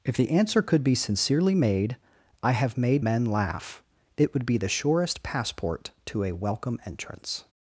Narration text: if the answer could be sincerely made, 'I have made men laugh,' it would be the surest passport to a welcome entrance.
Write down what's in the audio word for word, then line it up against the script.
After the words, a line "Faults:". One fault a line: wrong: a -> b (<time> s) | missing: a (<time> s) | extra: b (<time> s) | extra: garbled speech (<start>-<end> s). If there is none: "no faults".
if the answer could be sincerely made, 'I have made men laugh,' it would be the surest passport to a welcome entrance.
Faults:
no faults